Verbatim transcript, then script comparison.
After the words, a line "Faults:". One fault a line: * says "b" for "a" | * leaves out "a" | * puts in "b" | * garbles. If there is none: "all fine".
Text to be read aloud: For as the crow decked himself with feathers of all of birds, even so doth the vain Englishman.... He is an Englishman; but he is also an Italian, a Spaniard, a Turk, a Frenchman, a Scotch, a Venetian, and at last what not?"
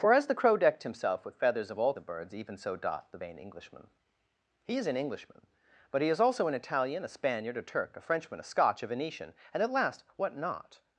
For as the crow decked himself with feathers of all of birds, even so doth the vain Englishman.... He is an Englishman; but he is also an Italian, a Spaniard, a Turk, a Frenchman, a Scotch, a Venetian, and at last what not?"
Faults:
all fine